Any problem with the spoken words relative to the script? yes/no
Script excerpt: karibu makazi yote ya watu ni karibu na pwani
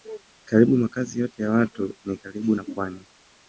no